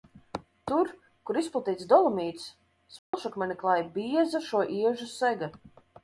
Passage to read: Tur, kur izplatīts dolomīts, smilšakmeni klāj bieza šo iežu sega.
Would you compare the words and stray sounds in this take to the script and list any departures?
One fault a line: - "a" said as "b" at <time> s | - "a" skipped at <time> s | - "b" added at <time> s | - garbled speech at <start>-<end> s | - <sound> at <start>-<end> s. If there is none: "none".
- dropout at 3.0-3.1 s